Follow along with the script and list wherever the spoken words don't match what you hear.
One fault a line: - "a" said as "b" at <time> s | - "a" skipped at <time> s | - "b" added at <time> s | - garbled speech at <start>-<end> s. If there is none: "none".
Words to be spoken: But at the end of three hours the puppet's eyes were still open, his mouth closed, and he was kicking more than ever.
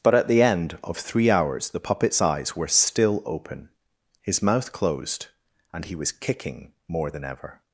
none